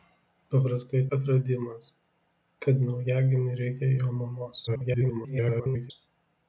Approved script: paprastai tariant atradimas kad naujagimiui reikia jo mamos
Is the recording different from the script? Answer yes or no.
yes